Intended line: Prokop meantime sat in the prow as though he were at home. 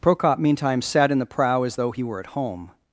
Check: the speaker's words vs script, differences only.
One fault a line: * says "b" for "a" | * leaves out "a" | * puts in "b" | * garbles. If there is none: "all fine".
all fine